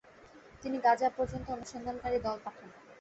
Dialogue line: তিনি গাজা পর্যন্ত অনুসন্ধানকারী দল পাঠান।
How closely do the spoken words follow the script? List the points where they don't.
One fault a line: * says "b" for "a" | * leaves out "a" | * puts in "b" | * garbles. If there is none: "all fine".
all fine